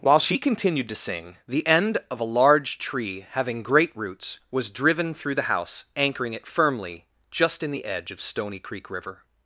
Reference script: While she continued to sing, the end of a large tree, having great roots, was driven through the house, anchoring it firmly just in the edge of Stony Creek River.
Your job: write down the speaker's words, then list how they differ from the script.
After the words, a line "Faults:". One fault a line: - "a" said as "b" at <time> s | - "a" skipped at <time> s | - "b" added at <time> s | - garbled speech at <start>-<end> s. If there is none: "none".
While she continued to sing, the end of a large tree, having great roots, was driven through the house, anchoring it firmly just in the edge of Stony Creek River.
Faults:
none